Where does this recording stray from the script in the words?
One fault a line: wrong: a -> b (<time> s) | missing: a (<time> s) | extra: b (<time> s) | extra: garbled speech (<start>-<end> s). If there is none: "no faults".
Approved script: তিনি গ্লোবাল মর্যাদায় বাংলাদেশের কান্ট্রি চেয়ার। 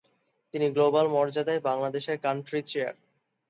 no faults